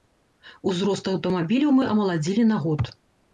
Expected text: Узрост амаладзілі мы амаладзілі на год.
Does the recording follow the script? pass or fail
fail